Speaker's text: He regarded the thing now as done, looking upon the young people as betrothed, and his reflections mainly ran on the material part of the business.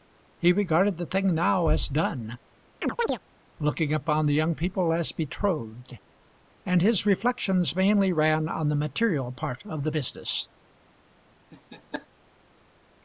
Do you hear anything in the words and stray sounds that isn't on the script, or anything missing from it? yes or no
yes